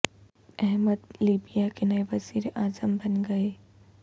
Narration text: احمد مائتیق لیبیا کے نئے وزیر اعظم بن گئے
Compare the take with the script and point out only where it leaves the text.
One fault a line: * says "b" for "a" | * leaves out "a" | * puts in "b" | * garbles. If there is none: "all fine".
* leaves out "مائتیق"